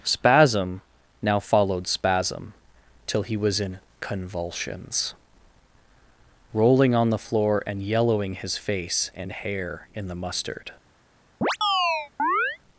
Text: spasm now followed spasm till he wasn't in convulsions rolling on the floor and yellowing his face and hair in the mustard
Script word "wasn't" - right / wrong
wrong